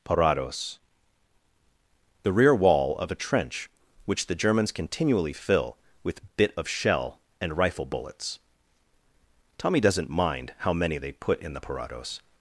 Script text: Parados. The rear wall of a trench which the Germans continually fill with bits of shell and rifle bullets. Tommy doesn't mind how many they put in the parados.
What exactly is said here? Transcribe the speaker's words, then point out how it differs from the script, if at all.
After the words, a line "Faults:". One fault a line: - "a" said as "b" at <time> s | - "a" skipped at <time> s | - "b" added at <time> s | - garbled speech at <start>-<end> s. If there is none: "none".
Parados. The rear wall of a trench which the Germans continually fill with bit of shell and rifle bullets. Tommy doesn't mind how many they put in the parados.
Faults:
- "bits" said as "bit" at 6.4 s